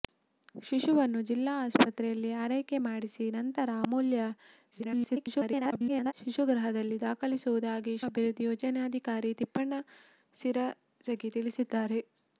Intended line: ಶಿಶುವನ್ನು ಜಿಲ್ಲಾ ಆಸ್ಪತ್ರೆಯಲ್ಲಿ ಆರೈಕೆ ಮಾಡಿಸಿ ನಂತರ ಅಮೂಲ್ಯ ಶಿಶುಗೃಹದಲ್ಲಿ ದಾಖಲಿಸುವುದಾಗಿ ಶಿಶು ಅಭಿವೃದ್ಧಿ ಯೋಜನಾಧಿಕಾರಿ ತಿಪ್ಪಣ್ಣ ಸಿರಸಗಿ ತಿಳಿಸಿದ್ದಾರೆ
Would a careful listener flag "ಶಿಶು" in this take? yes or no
yes